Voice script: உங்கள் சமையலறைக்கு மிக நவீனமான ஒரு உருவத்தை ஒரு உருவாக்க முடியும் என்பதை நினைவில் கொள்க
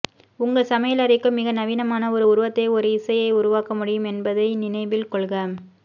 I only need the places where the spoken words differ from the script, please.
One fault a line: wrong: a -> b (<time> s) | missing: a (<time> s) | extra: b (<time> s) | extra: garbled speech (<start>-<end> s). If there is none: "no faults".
extra: இசையை (2.9 s)